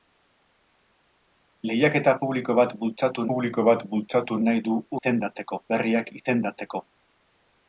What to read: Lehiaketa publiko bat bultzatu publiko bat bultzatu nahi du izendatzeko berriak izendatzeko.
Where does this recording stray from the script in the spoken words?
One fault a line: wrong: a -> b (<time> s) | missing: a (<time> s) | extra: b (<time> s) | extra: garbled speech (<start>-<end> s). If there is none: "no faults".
no faults